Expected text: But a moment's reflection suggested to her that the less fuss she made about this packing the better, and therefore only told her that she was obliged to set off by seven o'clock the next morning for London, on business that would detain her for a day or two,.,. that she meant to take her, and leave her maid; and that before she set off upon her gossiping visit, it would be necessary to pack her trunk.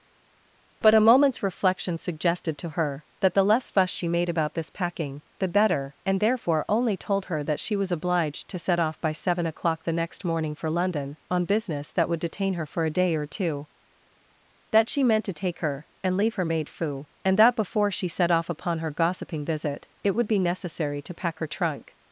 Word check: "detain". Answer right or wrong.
right